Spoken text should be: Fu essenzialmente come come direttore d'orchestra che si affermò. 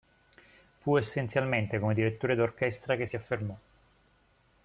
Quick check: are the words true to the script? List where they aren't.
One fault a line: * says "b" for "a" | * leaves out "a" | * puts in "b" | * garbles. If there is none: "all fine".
* leaves out "come"